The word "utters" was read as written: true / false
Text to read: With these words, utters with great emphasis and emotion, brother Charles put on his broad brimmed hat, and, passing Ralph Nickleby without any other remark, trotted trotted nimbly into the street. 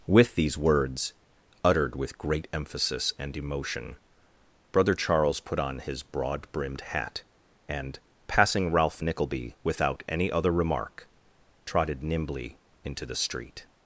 false